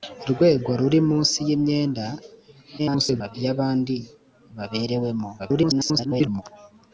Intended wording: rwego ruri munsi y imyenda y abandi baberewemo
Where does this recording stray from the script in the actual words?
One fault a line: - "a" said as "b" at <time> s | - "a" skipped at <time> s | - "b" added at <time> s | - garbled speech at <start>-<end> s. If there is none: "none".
- garbled speech at 2.8-3.4 s
- garbled speech at 5.4-6.4 s